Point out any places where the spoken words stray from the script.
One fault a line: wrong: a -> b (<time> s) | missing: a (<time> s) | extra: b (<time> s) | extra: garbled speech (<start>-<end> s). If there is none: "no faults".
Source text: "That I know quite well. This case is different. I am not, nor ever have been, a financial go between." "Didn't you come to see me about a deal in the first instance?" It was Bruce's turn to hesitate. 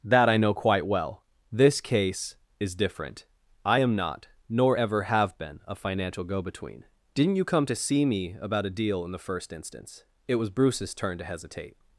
no faults